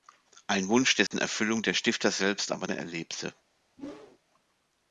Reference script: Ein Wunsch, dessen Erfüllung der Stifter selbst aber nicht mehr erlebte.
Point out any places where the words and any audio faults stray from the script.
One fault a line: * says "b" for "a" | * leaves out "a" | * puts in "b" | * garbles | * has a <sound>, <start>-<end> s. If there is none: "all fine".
* has a dropout, 1.1-1.1 s
* leaves out "nicht"
* has a whoosh, 3.8-4.2 s